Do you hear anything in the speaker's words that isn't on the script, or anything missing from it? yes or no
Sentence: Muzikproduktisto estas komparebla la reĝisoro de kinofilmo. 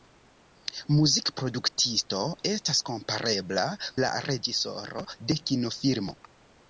no